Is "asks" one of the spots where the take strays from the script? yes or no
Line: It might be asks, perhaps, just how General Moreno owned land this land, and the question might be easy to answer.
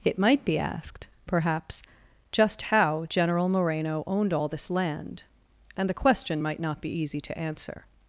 yes